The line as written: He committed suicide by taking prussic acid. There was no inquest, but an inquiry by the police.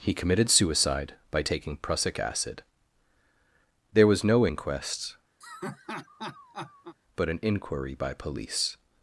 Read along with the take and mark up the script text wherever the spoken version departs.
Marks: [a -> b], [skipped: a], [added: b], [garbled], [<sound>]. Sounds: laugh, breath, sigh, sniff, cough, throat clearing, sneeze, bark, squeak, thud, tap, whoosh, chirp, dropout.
He committed suicide by taking prussic acid. There was no inquest, [laugh] but an inquiry by [skipped: the] police.